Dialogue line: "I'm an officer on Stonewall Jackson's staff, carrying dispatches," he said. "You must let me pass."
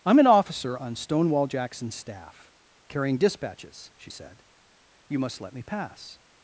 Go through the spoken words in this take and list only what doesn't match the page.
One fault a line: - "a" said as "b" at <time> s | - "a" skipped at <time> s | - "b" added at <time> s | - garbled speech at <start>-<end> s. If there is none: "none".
- "he" said as "she" at 4.0 s